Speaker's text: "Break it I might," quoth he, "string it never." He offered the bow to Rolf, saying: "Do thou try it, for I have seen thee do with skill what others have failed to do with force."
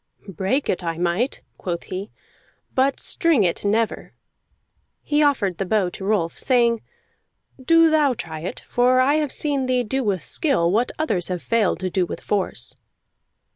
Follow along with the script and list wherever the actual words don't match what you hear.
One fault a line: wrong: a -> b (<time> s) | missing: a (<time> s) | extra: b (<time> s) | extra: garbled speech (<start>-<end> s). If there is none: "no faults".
extra: but (2.7 s)